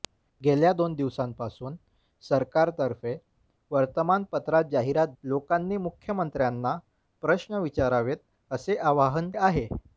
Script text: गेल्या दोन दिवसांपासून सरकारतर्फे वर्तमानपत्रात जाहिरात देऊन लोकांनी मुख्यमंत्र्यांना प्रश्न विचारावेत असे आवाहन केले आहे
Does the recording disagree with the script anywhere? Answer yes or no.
yes